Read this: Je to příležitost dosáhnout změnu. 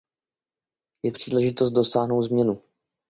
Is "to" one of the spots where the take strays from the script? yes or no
yes